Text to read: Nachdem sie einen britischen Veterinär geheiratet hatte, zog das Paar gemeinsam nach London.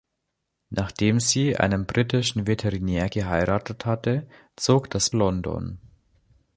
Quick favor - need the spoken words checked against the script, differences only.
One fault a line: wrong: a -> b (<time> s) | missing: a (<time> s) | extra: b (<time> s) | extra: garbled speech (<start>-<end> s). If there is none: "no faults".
missing: Paar gemeinsam nach (5.1 s)